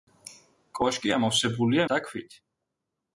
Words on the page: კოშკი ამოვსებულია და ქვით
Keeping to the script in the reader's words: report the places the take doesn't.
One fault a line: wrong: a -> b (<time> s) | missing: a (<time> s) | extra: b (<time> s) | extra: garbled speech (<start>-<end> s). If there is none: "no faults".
no faults